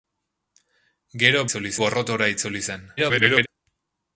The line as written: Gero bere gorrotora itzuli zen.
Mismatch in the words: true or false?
true